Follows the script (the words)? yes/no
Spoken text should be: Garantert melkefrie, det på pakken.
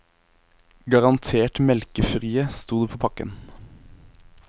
no